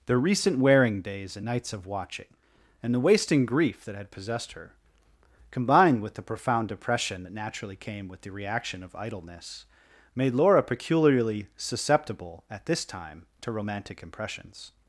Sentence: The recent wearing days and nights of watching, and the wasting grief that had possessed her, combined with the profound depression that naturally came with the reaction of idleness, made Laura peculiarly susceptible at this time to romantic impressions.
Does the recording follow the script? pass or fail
pass